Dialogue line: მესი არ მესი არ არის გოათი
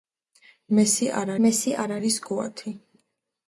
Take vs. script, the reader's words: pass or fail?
pass